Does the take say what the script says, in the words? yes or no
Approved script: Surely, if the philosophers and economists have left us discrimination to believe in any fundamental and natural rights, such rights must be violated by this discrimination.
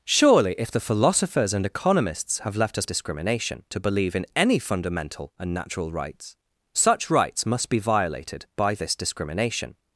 yes